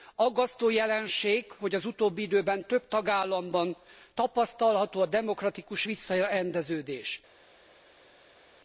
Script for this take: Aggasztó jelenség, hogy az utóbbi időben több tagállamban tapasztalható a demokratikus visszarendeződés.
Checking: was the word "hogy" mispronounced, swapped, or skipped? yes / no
no